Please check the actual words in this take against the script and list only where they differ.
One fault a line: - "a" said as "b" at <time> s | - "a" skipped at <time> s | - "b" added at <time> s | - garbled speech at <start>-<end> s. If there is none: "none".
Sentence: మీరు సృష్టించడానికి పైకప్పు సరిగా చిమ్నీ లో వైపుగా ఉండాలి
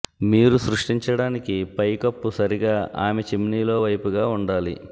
- "ఆమె" added at 3.0 s